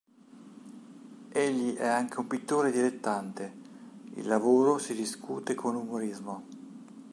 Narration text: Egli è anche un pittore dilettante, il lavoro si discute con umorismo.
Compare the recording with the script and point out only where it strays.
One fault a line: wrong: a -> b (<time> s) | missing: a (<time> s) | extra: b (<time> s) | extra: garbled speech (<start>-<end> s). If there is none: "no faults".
no faults